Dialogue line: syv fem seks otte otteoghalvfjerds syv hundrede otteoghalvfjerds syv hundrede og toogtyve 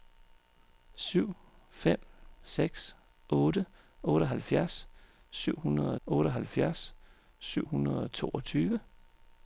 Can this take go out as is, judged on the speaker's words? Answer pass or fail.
pass